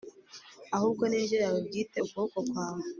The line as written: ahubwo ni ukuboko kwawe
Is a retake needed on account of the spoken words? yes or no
yes